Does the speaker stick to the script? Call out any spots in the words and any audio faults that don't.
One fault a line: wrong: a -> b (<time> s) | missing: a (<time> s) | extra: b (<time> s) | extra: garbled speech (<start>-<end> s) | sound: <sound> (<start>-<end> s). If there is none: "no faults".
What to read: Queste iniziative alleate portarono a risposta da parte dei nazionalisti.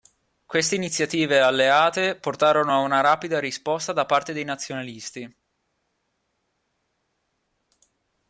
extra: una rapida (2.8 s)